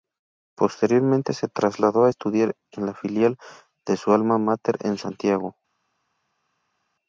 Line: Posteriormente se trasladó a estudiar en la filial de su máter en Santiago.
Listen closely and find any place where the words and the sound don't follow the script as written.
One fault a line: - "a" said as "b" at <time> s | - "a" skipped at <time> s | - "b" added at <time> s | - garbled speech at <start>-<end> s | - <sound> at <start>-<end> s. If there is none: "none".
- "alma" added at 4.1 s